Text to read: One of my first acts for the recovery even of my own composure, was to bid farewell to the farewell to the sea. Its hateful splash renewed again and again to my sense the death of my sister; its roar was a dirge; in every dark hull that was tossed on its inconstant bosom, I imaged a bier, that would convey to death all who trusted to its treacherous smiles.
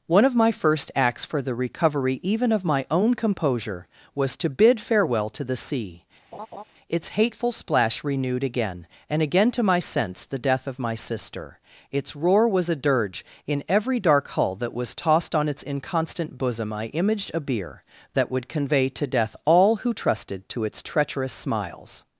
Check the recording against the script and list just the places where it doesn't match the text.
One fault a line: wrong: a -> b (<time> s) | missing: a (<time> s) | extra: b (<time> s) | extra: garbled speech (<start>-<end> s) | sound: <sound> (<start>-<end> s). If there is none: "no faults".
missing: farewell to the (5.5 s)
sound: laugh (6.3-6.6 s)